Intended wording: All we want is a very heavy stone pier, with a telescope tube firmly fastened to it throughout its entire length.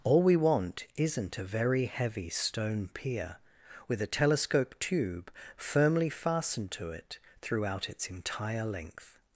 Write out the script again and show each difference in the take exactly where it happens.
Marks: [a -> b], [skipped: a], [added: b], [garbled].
All we want [is -> isn't] a very heavy stone pier, with a telescope tube firmly fastened to it throughout its entire length.